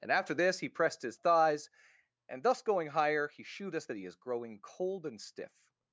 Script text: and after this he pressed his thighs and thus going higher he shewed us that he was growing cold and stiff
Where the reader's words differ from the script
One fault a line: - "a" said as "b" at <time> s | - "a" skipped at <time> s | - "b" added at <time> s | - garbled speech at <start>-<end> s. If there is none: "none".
- "was" said as "is" at 4.0 s